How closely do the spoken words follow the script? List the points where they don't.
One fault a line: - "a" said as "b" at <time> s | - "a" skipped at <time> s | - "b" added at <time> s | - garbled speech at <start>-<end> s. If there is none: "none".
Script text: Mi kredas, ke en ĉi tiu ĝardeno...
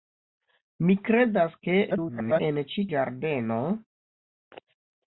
- garbled speech at 1.9-2.4 s
- "tiu" skipped at 2.9 s